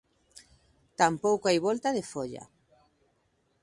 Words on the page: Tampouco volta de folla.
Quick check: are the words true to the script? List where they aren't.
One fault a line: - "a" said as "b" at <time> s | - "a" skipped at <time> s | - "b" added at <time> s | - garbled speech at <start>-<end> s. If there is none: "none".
- "hai" added at 1.5 s